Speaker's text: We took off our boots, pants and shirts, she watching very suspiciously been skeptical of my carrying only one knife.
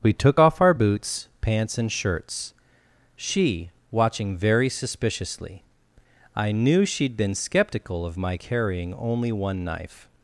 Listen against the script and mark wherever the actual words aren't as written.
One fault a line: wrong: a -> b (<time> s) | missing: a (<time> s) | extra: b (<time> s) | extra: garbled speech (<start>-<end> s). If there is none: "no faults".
extra: I knew she'd (6.3 s)